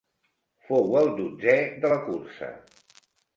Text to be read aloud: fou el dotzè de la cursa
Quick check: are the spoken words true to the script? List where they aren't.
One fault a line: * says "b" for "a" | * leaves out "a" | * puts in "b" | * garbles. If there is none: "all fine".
all fine